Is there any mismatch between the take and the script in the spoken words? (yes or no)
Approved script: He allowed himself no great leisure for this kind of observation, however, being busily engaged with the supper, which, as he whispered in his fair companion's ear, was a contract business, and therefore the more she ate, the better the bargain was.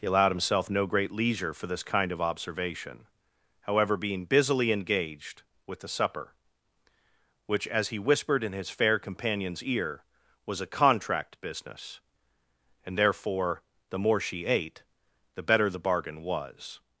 no